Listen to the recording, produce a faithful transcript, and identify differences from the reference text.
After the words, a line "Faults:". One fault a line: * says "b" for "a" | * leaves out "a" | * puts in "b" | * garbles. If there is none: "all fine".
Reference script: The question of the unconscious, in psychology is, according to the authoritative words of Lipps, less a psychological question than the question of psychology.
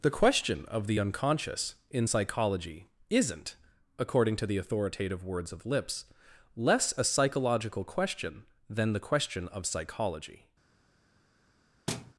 The question of the unconscious, in psychology isn't, according to the authoritative words of Lipps, less a psychological question than the question of psychology.
Faults:
* says "isn't" for "is"